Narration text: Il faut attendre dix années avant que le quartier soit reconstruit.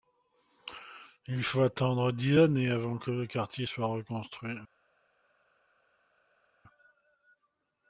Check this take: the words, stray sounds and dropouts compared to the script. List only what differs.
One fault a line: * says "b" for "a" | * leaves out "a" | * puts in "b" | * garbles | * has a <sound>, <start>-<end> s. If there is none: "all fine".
all fine